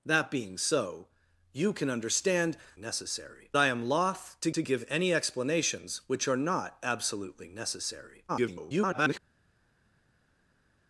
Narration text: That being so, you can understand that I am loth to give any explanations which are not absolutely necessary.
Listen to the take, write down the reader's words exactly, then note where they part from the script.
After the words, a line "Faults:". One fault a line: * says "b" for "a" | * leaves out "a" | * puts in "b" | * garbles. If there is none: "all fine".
That being so, you can understand necessary I am loth to to give any explanations which are not absolutely necessary. [garbled]
Faults:
* says "necessary" for "that"
* puts in "to"
* garbles